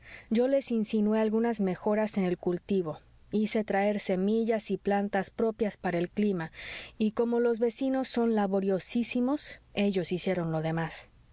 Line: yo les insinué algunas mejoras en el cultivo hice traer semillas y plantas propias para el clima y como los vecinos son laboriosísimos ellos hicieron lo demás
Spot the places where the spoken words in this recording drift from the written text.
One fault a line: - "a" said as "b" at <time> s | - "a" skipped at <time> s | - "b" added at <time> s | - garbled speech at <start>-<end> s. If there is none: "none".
none